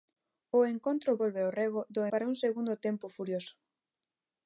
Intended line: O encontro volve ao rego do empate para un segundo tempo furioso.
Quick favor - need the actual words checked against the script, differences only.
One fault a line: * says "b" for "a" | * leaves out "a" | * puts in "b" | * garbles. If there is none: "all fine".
* leaves out "empate"